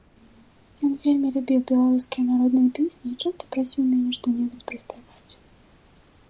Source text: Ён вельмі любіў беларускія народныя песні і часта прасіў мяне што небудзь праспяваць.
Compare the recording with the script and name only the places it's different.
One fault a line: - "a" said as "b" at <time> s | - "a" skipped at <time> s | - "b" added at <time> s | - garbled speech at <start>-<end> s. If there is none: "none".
none